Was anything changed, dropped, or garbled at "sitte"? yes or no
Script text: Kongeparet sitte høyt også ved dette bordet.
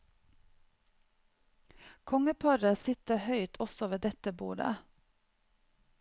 no